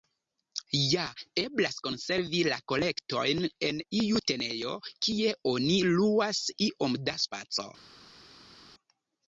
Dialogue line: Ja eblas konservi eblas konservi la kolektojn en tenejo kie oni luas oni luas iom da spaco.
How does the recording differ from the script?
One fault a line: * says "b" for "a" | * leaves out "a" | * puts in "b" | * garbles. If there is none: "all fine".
* leaves out "eblas konservi"
* puts in "iu"
* leaves out "oni luas"